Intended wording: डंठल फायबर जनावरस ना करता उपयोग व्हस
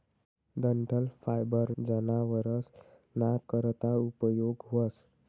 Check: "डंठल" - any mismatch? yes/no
no